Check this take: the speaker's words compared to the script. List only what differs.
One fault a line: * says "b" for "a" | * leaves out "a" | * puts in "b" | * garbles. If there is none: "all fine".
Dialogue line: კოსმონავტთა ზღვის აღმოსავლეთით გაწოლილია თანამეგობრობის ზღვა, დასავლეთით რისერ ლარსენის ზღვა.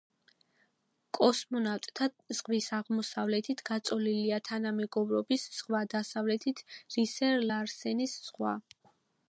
all fine